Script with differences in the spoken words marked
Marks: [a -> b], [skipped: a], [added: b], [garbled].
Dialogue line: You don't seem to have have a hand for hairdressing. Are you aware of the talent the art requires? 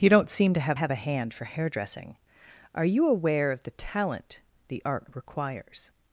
You don't seem to have have a hand for hairdressing. Are you aware of the talent the art requires?